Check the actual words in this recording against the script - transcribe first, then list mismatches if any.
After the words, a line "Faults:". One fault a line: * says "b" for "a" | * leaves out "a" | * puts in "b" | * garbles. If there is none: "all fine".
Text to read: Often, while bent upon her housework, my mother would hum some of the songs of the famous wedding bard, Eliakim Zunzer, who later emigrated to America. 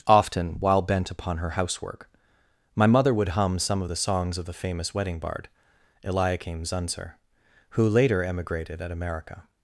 Often, while bent upon her housework, my mother would hum some of the songs of the famous wedding bard, Eliakim Zunzer, who later emigrated at America.
Faults:
* says "at" for "to"